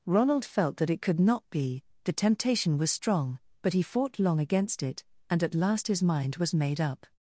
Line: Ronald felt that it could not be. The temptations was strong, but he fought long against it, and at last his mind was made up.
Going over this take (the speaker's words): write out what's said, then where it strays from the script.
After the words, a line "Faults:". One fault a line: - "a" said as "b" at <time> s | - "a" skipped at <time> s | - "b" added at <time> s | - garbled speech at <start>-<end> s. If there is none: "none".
Ronald felt that it could not be. The temptation was strong, but he fought long against it, and at last his mind was made up.
Faults:
- "temptations" said as "temptation" at 2.1 s